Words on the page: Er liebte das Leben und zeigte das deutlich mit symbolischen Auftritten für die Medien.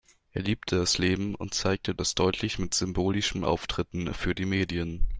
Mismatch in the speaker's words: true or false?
false